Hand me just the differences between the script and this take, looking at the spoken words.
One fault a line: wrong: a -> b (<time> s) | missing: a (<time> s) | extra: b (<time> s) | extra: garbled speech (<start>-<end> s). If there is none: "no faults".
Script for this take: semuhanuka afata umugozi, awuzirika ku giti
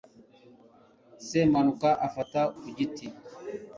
missing: umugozi awuzirika (2.4 s)